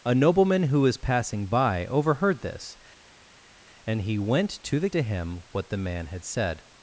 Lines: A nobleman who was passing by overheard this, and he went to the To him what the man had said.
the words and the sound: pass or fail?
pass